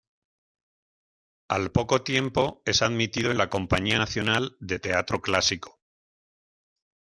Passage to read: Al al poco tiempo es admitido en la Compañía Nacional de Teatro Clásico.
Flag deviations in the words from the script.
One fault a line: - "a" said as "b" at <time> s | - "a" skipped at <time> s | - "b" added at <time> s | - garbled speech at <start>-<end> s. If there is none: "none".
- "al" skipped at 1.7 s